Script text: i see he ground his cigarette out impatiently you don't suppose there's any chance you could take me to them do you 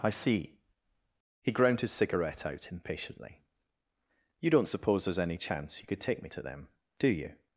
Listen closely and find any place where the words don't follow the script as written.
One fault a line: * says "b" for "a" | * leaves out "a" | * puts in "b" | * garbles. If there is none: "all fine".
all fine